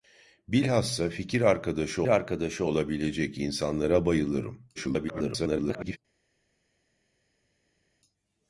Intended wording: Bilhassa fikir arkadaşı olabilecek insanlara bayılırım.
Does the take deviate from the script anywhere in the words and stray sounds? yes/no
yes